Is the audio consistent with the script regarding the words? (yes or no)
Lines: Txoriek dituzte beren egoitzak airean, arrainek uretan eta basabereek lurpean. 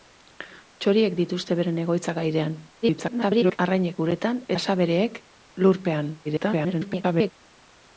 no